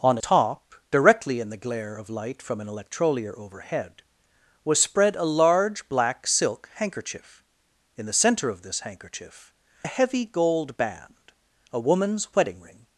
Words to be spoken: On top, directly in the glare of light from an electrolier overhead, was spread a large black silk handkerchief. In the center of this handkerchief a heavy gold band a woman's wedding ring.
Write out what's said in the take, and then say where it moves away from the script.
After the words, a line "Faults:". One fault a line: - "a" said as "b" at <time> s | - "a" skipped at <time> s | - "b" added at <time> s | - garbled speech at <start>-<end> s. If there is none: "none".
On top, directly in the glare of light from an electrolier overhead, was spread a large black silk handkerchief. In the center of this handkerchief a heavy gold band a woman's wedding ring.
Faults:
none